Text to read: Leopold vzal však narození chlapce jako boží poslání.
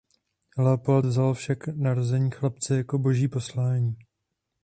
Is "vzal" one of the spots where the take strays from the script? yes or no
no